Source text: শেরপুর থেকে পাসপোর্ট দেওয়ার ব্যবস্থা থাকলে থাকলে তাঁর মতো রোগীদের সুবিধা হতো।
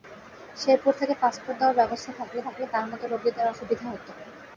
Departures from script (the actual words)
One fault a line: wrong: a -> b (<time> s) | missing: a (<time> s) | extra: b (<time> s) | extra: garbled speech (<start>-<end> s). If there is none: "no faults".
no faults